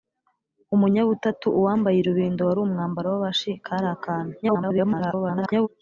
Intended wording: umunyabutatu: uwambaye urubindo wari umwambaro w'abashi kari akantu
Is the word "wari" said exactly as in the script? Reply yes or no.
yes